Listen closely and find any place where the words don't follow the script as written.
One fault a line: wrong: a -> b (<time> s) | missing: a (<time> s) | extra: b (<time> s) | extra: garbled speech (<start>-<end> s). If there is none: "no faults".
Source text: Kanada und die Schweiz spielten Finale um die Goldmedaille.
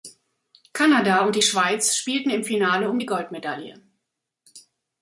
extra: im (2.3 s)